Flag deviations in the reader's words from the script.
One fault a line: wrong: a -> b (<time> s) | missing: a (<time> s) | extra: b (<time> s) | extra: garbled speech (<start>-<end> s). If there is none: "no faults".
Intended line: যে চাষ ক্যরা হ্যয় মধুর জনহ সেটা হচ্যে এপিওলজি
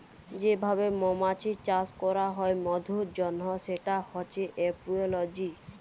extra: ভাবে মমাছির (0.6 s)